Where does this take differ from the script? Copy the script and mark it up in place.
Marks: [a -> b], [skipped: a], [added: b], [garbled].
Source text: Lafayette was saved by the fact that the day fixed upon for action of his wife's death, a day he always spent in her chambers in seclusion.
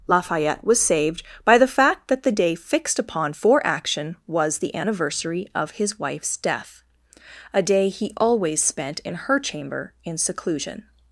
Lafayette was saved by the fact that the day fixed upon for action [added: was the anniversary] of his wife's death, a day he always spent in her [chambers -> chamber] in seclusion.